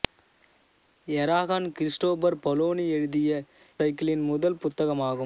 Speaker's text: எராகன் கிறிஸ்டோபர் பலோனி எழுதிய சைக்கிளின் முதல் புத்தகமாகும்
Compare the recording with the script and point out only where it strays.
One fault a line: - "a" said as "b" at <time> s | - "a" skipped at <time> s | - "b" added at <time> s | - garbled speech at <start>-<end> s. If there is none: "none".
none